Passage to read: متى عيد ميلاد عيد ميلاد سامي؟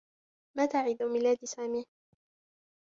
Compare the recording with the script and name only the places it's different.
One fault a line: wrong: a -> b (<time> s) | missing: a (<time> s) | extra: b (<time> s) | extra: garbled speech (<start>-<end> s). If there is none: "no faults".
missing: عيد ميلاد (1.5 s)